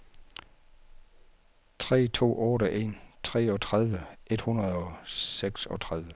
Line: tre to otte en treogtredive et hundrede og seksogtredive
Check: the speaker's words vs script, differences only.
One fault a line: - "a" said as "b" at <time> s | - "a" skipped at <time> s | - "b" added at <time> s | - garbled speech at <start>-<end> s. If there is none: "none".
none